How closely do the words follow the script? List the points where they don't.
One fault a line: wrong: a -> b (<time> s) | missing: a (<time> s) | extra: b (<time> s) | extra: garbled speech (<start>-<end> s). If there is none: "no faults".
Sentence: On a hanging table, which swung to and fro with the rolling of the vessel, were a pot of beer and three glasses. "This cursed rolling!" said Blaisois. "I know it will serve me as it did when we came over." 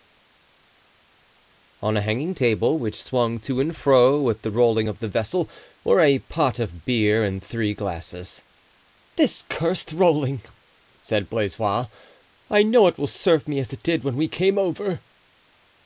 no faults